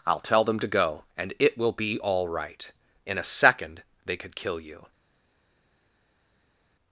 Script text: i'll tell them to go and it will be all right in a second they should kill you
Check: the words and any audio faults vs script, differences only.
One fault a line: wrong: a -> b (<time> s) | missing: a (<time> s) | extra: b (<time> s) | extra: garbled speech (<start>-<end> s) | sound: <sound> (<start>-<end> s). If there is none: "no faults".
wrong: should -> could (4.2 s)